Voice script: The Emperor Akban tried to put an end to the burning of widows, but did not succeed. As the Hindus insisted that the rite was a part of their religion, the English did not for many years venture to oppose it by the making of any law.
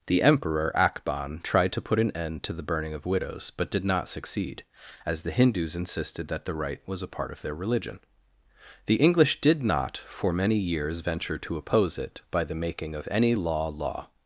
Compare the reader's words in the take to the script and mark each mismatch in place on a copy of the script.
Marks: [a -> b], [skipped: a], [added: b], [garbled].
The Emperor Akban tried to put an end to the burning of widows, but did not succeed. As the Hindus insisted that the rite was a part of their religion, the English did not for many years venture to oppose it by the making of any law. [added: law]